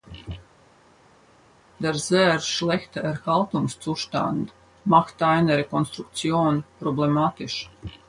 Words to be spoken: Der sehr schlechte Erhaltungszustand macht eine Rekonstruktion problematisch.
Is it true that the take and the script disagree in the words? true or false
false